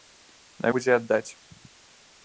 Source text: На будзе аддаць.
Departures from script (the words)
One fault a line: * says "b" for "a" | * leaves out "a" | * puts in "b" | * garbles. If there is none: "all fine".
all fine